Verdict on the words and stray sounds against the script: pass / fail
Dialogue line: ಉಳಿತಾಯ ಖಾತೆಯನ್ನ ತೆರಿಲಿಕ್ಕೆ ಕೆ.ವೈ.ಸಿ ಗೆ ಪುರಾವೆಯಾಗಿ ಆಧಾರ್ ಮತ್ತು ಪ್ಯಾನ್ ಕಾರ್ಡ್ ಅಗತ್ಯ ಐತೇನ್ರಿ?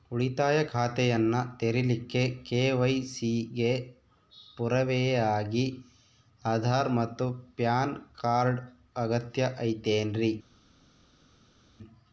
pass